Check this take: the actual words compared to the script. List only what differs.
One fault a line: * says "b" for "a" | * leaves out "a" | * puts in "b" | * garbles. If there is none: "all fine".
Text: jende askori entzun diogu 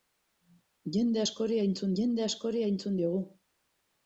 * puts in "jende askori entzun"